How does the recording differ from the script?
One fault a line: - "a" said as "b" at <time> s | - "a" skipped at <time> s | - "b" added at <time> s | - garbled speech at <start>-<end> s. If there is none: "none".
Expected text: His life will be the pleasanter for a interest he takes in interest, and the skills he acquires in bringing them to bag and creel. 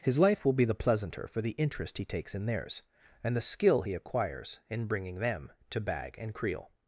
- "a" said as "the" at 1.4 s
- "interest" said as "theirs" at 2.5 s
- "skills" said as "skill" at 3.4 s